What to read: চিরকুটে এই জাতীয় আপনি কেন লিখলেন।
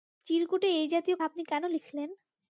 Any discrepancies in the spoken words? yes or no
no